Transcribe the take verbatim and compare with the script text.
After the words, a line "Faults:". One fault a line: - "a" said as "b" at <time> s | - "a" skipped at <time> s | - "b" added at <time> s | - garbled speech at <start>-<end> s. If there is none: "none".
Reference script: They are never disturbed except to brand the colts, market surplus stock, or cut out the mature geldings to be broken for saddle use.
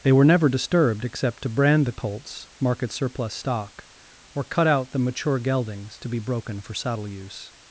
They were never disturbed except to brand the colts, market surplus stock, or cut out the mature geldings to be broken for saddle use.
Faults:
- "are" said as "were" at 0.1 s